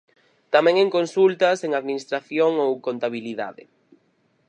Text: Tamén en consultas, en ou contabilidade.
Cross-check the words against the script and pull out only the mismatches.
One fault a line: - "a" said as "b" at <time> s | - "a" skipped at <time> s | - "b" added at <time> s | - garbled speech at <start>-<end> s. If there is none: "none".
- "administración" added at 1.8 s